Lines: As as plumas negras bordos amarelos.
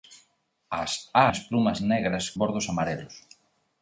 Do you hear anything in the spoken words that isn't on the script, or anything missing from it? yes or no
no